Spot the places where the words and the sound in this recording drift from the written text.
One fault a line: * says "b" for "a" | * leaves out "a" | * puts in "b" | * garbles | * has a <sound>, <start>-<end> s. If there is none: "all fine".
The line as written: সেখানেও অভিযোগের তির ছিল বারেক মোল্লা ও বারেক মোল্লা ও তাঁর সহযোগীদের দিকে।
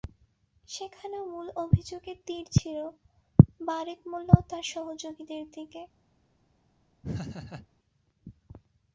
* puts in "মূল"
* leaves out "বারেক মোল্লা ও"
* has a laugh, 7.0-7.7 s